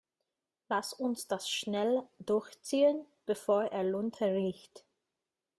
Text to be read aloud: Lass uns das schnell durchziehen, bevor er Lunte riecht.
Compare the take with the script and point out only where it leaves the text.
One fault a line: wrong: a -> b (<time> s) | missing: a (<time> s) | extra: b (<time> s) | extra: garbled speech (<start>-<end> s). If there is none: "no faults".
no faults